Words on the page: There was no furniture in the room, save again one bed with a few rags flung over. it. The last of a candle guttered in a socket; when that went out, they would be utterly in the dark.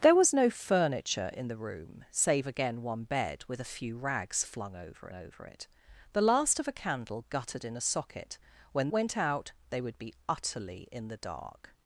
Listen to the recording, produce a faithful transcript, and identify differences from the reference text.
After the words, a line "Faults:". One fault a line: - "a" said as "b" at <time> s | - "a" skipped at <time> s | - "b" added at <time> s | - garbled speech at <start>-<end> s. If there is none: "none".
There was no furniture in the room, save again one bed with a few rags flung over over. it. The last of a candle guttered in a socket; when went out, they would be utterly in the dark.
Faults:
- "over" added at 5.1 s
- "that" skipped at 8.9 s